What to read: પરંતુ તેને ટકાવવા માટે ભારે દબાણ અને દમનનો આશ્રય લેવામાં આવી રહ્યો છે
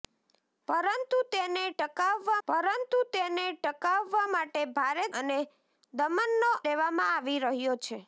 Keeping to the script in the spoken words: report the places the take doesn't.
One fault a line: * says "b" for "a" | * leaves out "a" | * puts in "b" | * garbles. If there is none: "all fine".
* puts in "પરંતુ તેને ટકાવવા"
* leaves out "દબાણ"
* leaves out "આશ્રય"